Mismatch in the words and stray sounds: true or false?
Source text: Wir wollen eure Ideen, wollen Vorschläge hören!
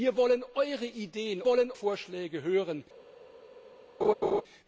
true